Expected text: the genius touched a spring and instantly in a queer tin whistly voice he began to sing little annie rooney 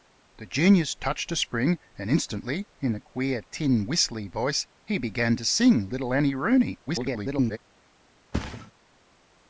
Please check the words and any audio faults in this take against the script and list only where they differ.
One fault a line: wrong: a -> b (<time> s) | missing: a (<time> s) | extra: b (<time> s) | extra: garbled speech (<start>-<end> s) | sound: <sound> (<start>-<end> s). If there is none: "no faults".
extra: garbled speech (6.9-7.6 s)
sound: thud (8.3-8.7 s)